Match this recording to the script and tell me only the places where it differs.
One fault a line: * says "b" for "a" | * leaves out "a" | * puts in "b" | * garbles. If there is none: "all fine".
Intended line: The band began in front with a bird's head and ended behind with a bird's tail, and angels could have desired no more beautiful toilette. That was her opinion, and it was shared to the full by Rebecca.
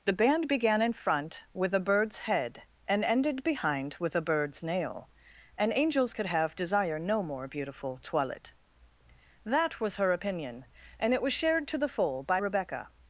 * says "nail" for "tail"
* says "desire" for "desired"